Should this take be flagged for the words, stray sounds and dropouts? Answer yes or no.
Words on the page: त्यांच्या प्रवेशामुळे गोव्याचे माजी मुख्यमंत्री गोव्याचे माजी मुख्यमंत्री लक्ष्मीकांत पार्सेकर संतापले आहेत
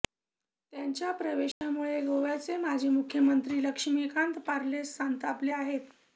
yes